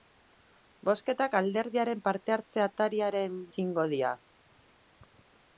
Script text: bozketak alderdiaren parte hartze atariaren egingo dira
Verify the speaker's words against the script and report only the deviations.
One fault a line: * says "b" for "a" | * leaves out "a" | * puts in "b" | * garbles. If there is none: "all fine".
all fine